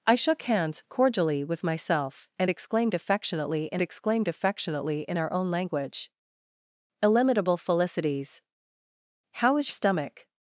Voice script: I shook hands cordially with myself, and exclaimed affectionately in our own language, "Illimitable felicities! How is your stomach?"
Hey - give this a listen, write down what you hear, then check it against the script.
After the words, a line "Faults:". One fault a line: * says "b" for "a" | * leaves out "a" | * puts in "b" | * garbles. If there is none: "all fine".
I shook hands cordially with myself, and exclaimed affectionately in exclaimed affectionately in our own language, "Illimitable felicities! How is stomach?"
Faults:
* puts in "exclaimed affectionately in"
* leaves out "your"